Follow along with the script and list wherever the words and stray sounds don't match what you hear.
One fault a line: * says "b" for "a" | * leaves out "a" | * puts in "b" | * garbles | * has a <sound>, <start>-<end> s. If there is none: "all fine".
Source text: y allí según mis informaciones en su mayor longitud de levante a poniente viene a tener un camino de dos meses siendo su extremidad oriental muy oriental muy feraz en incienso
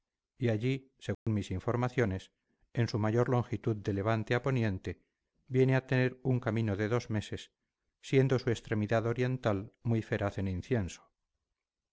* has a dropout, 1.1-1.3 s
* leaves out "oriental muy"